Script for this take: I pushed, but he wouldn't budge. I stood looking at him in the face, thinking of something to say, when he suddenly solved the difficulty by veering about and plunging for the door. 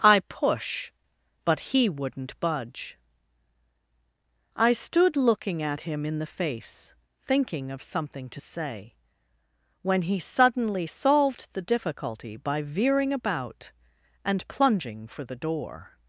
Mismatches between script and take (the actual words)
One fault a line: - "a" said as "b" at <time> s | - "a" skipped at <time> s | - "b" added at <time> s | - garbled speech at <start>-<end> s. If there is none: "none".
- "pushed" said as "push" at 0.2 s